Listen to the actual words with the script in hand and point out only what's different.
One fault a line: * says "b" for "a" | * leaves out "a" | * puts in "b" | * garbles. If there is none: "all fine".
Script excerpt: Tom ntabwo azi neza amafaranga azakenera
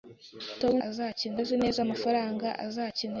* says "azakenera" for "ntabwo"